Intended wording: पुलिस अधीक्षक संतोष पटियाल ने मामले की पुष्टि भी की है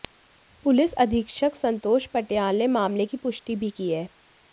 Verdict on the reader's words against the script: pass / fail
pass